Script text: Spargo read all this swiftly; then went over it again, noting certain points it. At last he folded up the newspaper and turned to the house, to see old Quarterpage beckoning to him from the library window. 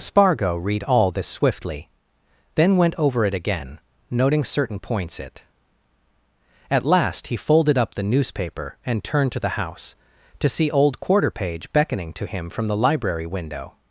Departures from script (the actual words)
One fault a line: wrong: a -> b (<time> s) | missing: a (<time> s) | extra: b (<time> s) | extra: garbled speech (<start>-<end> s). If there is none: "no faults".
no faults